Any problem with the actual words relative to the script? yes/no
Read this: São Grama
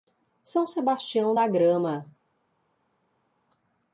yes